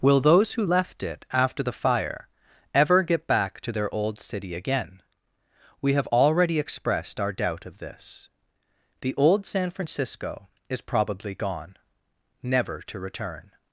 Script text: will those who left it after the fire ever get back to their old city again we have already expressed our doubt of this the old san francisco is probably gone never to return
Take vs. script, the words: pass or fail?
pass